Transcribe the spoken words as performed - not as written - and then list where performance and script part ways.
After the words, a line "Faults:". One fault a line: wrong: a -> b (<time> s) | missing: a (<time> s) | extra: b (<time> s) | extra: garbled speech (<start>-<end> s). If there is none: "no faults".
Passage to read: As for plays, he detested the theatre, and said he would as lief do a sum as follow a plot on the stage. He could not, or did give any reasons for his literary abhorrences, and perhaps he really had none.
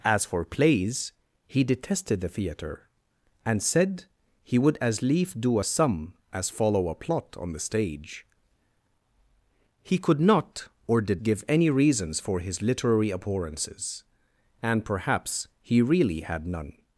As for plays, he detested the theatre, and said he would as lief do a sum as follow a plot on the stage. He could not, or did give any reasons for his literary abhorrences, and perhaps he really had none.
Faults:
no faults